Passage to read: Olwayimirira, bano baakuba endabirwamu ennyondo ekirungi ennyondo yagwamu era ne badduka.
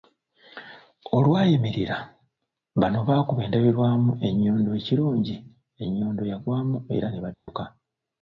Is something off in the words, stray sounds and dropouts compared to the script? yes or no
yes